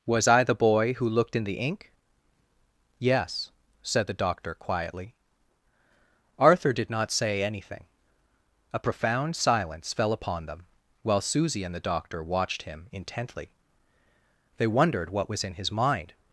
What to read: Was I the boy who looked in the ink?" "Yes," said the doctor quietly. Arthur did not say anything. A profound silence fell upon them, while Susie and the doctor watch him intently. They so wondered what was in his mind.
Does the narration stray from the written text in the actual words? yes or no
yes